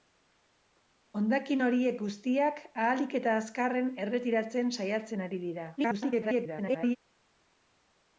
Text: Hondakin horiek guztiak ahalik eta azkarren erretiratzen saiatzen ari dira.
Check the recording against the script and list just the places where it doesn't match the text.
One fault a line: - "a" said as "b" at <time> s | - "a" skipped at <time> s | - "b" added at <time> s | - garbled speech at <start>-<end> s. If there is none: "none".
- garbled speech at 5.8-7.0 s